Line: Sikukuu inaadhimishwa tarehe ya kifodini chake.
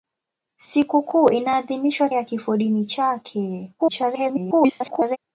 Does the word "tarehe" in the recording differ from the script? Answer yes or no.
yes